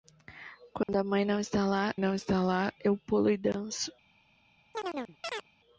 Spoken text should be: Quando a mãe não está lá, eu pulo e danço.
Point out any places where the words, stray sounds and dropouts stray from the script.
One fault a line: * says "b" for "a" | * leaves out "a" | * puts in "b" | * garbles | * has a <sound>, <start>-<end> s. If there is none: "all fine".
* has a dropout, 0.8-0.9 s
* puts in "não está lá"
* has a chirp, 4.7-5.5 s